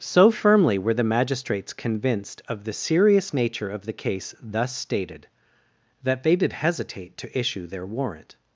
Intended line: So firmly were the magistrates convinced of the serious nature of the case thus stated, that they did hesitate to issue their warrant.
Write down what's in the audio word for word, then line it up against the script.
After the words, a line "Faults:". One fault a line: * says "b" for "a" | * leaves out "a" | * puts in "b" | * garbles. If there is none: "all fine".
So firmly were the magistrates convinced of the serious nature of the case thus stated, that they did hesitate to issue their warrant.
Faults:
all fine